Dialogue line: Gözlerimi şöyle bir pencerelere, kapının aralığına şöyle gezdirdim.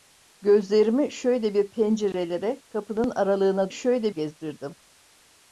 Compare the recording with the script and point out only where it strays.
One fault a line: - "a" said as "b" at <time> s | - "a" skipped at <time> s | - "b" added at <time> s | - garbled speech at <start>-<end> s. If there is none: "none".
none